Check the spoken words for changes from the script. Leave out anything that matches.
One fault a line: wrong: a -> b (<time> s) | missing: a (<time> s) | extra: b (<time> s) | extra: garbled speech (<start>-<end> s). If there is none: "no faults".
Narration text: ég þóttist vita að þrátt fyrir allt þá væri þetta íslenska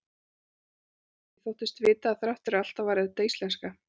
no faults